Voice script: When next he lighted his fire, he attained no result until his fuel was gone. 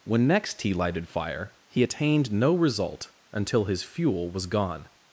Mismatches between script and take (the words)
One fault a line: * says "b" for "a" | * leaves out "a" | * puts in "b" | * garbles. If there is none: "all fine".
* leaves out "his"